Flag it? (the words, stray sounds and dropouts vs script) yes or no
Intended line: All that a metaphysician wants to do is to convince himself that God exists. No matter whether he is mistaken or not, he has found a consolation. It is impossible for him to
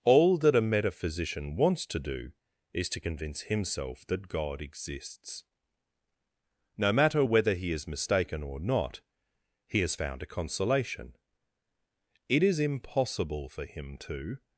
no